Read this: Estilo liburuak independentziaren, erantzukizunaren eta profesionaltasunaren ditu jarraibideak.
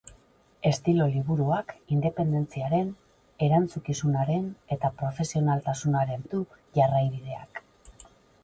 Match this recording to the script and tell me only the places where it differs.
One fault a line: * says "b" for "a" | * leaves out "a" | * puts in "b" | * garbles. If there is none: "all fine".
all fine